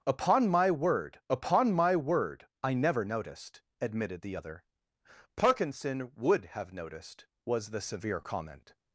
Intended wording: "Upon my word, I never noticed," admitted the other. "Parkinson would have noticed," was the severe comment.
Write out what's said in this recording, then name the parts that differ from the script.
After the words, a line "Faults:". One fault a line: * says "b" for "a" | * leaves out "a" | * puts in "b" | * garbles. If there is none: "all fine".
"Upon my word upon my word, I never noticed," admitted the other. "Parkinson would have noticed," was the severe comment.
Faults:
* puts in "upon my word"